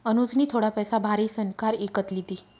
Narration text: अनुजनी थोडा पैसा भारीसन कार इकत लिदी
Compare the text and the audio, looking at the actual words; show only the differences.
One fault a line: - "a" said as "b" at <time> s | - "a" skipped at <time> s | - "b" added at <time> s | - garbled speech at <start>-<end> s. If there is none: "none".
none